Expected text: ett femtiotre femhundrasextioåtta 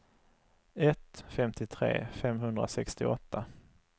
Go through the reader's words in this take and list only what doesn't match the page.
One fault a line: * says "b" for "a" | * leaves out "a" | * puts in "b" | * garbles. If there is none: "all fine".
all fine